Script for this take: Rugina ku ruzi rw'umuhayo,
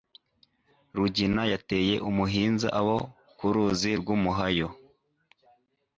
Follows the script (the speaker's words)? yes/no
no